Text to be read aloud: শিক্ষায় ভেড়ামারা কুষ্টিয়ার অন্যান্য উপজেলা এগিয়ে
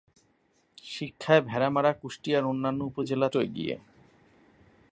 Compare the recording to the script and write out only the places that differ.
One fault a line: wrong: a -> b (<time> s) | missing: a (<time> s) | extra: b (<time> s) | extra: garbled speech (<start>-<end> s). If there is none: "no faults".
no faults